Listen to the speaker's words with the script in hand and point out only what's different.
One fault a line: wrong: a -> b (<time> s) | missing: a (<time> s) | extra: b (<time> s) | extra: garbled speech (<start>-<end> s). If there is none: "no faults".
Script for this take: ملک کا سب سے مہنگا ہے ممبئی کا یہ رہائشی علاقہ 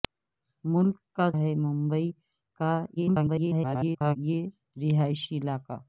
missing: سب سے مہنگا (1.3 s)
extra: garbled speech (3.0-4.2 s)